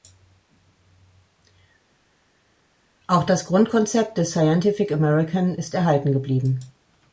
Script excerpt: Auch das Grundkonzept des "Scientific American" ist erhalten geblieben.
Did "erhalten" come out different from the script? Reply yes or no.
no